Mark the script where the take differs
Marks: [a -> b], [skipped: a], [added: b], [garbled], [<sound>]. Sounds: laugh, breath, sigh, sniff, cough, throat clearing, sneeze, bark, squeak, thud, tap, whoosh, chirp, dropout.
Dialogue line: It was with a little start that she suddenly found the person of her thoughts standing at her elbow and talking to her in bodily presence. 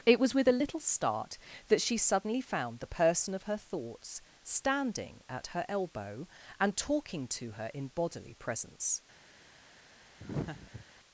It was with a little start that she suddenly found the person of her thoughts standing at her elbow and talking to her in bodily presence. [laugh]